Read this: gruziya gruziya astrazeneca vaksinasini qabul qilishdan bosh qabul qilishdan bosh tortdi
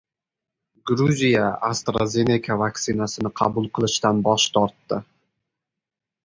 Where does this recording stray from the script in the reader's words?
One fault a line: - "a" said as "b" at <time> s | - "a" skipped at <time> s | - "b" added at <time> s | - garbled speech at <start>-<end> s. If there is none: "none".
- "gruziya" skipped at 1.4 s
- "qabul qilishdan bosh" skipped at 4.5 s